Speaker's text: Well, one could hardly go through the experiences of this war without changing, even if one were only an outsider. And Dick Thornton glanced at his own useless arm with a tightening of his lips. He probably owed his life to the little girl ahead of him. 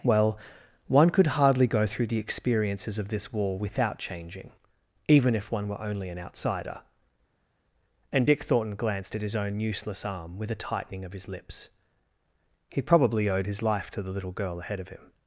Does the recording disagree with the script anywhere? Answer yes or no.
no